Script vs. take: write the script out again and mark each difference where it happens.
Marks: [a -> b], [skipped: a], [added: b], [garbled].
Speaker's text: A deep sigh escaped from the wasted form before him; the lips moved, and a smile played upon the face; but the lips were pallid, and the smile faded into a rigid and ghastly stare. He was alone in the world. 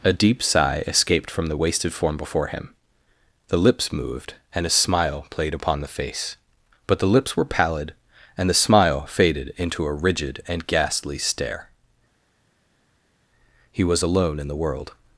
A deep sigh escaped from the wasted form before him; the lips moved, and a smile played upon the face; but the lips were pallid, and the smile faded into a rigid and ghastly stare. He was alone in the world.